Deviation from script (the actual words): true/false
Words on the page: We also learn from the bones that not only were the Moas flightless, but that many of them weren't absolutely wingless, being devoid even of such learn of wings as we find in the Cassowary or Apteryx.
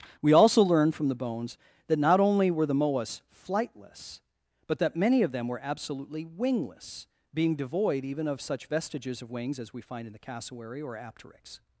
true